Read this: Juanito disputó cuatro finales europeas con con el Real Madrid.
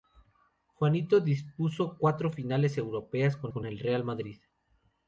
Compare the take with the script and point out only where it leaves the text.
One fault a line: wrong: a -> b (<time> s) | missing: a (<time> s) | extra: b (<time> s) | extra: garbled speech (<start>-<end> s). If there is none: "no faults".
no faults